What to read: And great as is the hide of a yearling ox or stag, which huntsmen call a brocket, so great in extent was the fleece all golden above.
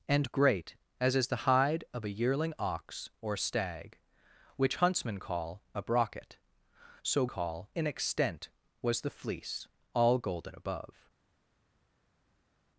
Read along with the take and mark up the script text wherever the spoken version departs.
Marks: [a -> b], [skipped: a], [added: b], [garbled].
And great as is the hide of a yearling ox or stag, which huntsmen call a brocket, so [great -> call] in extent was the fleece all golden above.